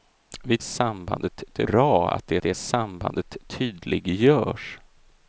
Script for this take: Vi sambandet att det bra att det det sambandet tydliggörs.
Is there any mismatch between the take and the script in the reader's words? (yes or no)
no